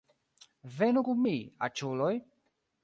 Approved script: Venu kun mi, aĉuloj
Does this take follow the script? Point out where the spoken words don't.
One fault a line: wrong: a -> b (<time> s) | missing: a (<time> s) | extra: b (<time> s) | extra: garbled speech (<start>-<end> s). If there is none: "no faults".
no faults